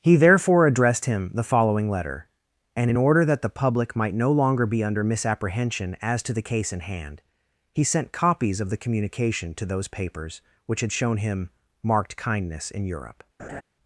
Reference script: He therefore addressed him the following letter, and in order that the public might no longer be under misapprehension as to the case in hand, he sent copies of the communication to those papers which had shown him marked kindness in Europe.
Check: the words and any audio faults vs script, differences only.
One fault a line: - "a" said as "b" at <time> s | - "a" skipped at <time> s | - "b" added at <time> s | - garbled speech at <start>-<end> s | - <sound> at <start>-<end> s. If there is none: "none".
- laugh at 13.4-13.6 s